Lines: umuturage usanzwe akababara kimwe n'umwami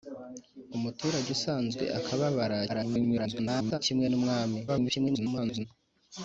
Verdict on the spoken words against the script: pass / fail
fail